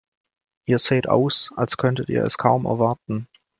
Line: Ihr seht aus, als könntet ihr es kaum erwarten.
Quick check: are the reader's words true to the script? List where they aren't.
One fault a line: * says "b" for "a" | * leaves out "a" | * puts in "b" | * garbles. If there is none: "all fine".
all fine